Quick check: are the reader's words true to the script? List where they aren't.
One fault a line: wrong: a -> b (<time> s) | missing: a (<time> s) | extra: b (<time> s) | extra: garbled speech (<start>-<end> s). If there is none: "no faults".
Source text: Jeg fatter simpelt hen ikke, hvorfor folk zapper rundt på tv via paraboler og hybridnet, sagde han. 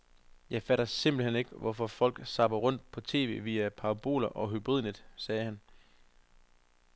no faults